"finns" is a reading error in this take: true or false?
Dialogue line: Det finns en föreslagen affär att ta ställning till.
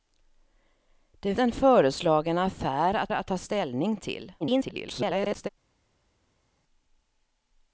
true